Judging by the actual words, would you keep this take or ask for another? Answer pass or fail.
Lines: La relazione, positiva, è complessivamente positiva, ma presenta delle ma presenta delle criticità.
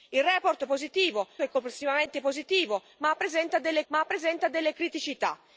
pass